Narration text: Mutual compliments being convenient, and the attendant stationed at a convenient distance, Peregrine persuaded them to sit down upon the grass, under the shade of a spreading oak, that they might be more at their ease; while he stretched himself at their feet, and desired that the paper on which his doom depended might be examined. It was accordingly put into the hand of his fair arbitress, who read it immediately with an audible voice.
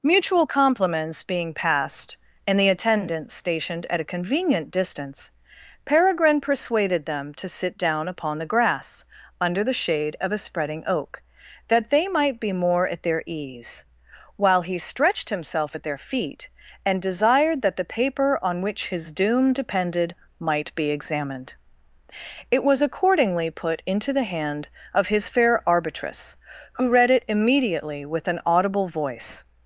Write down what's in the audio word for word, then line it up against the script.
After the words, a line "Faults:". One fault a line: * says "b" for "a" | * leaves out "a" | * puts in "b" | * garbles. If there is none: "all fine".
Mutual compliments being passed, and the attendant stationed at a convenient distance, Peregrine persuaded them to sit down upon the grass, under the shade of a spreading oak, that they might be more at their ease; while he stretched himself at their feet, and desired that the paper on which his doom depended might be examined. It was accordingly put into the hand of his fair arbitress, who read it immediately with an audible voice.
Faults:
* says "passed" for "convenient"